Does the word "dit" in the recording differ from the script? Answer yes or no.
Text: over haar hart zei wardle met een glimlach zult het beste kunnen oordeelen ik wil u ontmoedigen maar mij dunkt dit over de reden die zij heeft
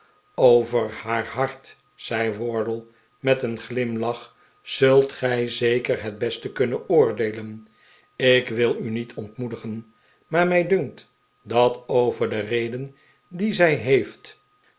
yes